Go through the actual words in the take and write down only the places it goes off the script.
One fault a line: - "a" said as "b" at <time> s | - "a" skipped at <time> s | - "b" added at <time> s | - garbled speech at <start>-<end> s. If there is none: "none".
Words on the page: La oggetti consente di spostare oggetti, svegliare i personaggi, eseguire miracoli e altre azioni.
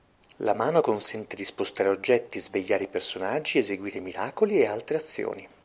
- "oggetti" said as "mano" at 0.6 s